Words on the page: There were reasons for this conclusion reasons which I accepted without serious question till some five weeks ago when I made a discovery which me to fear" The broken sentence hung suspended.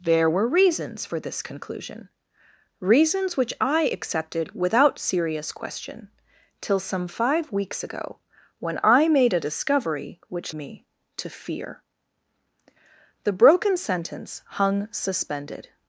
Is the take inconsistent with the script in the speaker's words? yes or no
no